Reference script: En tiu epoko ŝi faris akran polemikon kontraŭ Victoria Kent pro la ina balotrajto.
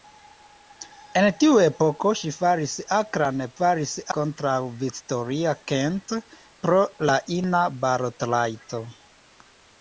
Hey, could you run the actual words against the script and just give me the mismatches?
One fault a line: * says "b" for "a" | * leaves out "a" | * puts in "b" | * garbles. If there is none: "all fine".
* says "faris" for "polemikon"